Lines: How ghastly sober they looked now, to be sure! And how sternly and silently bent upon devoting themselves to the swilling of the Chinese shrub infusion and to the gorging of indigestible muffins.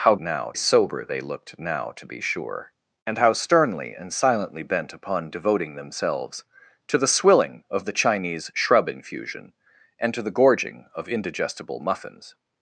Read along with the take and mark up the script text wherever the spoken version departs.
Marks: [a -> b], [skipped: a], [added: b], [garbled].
How [ghastly -> now] sober they looked now, to be sure! And how sternly and silently bent upon devoting themselves to the swilling of the Chinese shrub infusion and to the gorging of indigestible muffins.